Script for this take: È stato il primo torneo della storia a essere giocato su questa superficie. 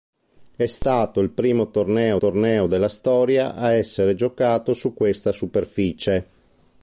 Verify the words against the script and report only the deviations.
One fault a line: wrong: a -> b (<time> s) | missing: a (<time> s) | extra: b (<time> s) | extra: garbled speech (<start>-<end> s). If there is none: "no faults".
extra: torneo (2.2 s)